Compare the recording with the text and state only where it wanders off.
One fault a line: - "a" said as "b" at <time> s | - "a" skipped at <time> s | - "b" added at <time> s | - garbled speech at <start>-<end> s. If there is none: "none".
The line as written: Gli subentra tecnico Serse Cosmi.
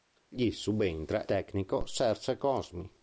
none